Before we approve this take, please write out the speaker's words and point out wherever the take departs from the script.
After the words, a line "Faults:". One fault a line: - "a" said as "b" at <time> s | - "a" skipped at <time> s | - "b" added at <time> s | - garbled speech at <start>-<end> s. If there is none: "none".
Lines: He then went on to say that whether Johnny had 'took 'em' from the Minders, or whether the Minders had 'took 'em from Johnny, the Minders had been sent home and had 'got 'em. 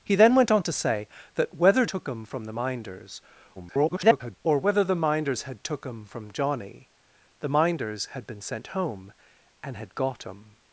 He then went on to say that whether 'Took 'em' from the Minders, [garbled] or whether the Minders had 'took 'em from Johnny, the Minders had been sent home and had 'got 'em.
Faults:
- "Johnny had" skipped at 1.9 s
- garbled speech at 3.6-4.4 s